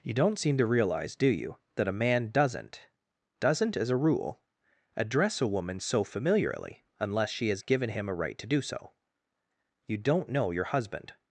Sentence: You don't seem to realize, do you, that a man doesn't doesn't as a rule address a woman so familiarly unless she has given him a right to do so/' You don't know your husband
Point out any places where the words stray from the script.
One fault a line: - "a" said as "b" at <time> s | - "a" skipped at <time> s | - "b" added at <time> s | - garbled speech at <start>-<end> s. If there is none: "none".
none